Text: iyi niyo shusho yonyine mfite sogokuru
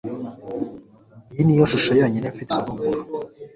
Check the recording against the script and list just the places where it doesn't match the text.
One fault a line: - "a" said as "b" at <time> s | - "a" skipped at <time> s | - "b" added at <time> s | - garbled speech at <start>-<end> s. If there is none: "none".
none